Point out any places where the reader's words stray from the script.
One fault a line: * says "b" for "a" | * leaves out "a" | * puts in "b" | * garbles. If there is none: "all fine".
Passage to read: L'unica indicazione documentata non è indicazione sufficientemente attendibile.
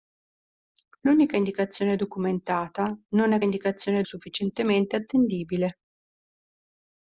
all fine